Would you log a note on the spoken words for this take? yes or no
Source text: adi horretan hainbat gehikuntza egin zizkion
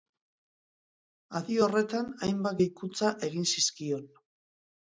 no